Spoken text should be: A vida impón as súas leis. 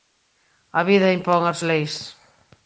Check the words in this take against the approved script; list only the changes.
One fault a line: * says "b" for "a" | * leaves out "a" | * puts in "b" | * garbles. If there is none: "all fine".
* leaves out "súas"